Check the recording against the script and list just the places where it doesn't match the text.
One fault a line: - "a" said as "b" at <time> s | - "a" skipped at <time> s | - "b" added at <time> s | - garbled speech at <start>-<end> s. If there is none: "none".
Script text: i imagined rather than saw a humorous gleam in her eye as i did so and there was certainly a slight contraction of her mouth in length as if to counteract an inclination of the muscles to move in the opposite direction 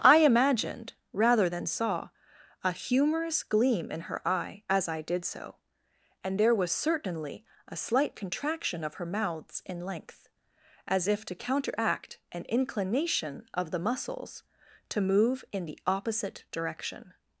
- "mouth" said as "mouths" at 9.1 s